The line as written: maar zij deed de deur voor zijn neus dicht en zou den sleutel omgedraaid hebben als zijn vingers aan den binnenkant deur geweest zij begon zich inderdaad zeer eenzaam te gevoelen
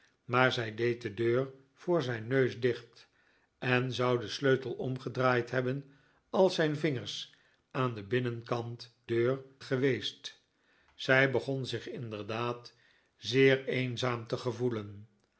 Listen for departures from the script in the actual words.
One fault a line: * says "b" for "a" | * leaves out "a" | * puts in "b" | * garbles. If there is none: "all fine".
all fine